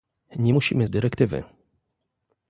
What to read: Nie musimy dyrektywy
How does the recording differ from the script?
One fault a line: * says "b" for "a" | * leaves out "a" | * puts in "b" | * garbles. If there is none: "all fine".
all fine